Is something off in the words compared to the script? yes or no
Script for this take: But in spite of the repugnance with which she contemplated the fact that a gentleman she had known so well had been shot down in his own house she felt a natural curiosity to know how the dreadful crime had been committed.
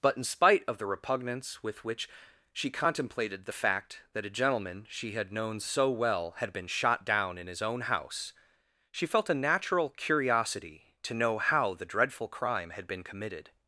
no